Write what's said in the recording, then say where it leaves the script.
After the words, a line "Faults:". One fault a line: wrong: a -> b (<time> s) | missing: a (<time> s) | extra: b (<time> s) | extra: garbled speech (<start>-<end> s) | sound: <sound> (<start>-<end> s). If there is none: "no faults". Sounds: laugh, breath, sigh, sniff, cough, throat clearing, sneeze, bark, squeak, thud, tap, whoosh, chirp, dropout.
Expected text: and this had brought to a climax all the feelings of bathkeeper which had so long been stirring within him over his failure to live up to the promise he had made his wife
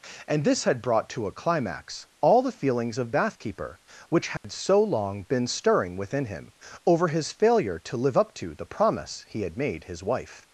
and this had brought to a climax all the feelings of bathkeeper which had so long been stirring within him over his failure to live up to the promise he had made his wife
Faults:
sound: dropout (4.4-4.4 s)